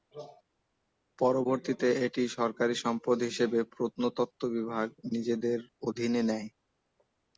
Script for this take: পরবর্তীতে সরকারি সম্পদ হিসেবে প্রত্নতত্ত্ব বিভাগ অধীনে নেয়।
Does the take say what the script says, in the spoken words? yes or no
no